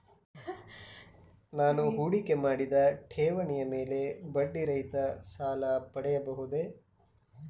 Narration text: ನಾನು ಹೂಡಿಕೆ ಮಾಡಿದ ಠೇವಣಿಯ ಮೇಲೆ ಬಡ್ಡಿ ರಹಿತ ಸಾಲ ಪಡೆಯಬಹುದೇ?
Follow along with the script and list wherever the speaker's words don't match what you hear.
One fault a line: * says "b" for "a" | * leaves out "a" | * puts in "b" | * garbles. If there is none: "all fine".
all fine